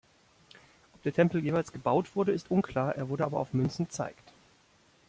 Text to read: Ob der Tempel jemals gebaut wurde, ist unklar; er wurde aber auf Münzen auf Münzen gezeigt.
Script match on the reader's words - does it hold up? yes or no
no